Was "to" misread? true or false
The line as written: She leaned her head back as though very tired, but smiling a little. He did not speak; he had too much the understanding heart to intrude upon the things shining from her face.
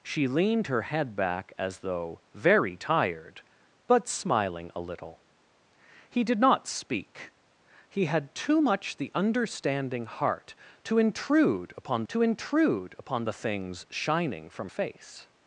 false